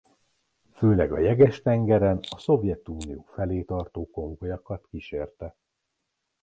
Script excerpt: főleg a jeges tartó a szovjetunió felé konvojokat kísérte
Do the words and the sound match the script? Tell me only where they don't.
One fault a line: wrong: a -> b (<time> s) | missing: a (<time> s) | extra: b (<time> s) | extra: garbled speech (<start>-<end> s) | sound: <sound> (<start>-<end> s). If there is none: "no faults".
wrong: tartó -> tengeren (1.6 s)
extra: tartó (3.6 s)